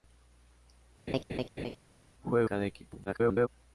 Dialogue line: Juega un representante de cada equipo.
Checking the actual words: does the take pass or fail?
fail